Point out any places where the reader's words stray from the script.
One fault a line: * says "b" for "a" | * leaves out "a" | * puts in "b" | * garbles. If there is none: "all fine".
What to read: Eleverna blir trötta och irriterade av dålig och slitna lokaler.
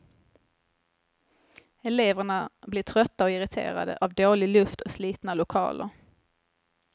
* puts in "luft"